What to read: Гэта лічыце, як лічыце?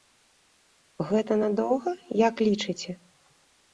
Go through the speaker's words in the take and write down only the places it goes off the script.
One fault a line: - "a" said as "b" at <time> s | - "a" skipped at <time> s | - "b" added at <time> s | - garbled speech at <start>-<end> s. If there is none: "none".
- "лічыце" said as "надоўга" at 1.4 s